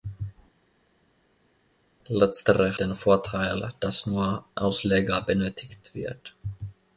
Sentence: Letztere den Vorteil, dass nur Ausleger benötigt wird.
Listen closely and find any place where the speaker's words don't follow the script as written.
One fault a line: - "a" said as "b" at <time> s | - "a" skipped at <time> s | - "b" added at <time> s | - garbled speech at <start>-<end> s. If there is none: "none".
none